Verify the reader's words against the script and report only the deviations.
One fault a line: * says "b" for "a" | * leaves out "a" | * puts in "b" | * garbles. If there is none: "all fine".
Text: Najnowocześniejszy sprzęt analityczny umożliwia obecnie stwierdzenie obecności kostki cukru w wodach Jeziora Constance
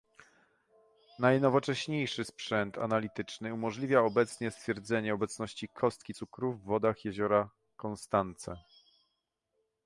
all fine